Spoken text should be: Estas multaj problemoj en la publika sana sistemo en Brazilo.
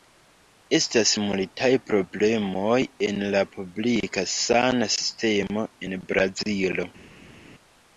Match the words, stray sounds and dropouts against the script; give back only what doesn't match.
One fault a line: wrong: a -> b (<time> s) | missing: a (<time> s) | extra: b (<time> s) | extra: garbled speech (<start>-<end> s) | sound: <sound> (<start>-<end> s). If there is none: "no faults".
no faults